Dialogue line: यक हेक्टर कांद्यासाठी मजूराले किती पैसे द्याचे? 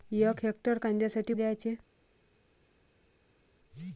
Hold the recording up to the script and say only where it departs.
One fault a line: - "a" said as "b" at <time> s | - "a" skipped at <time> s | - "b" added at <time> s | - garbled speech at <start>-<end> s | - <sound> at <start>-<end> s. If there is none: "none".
- "मजूराले किती पैसे" skipped at 1.3 s